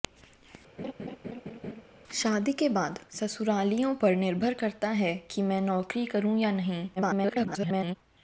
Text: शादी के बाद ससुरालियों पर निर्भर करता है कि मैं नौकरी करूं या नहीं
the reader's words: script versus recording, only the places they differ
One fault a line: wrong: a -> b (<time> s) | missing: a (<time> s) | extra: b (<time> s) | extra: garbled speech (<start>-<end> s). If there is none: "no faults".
extra: garbled speech (7.0-8.0 s)